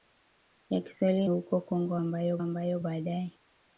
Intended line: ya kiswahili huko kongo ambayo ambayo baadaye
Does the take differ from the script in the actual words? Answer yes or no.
no